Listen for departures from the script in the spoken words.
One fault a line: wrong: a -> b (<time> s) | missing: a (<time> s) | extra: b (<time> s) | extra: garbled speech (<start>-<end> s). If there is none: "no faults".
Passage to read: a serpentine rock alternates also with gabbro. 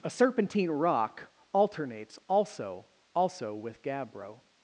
extra: also (3.1 s)